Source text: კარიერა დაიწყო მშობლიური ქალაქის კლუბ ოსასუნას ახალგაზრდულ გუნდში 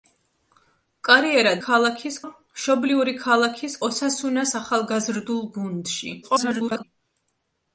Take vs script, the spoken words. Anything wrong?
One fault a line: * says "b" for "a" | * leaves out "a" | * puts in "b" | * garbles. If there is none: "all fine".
* says "ქალაქის" for "დაიწყო"
* leaves out "კლუბ"
* garbles